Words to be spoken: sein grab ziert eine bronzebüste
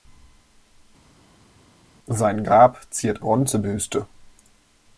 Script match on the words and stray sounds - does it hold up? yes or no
no